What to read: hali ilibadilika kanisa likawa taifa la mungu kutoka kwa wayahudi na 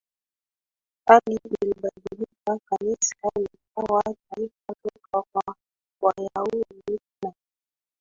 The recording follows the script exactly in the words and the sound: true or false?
false